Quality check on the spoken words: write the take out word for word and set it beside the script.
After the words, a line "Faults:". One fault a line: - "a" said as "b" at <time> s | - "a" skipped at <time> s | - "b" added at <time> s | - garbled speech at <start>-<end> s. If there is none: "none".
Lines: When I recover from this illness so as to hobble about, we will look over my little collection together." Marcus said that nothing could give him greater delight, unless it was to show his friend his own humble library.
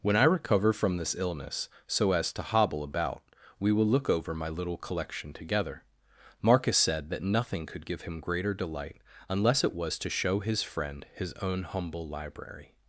When I recover from this illness so as to hobble about, we will look over my little collection together." Marcus said that nothing could give him greater delight, unless it was to show his friend his own humble library.
Faults:
none